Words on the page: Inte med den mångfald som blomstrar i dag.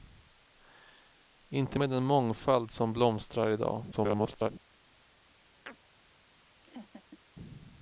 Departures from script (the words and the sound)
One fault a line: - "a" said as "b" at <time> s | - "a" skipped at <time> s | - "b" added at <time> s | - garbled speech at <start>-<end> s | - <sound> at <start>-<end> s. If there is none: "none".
- garbled speech at 3.9-4.5 s
- chirp at 5.7-5.8 s
- laugh at 6.6-7.2 s